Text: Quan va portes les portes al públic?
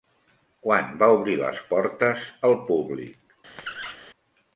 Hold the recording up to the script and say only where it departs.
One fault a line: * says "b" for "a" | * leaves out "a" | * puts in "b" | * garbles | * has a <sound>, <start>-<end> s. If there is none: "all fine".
* says "obrir" for "portes"
* has a squeak, 3.6-4.0 s